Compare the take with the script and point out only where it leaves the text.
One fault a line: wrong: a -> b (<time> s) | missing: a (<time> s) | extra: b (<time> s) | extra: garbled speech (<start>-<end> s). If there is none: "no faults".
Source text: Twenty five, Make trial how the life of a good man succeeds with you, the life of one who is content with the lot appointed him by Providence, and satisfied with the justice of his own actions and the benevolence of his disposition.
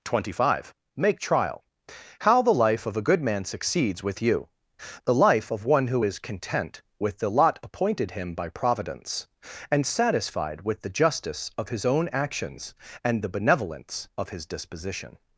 no faults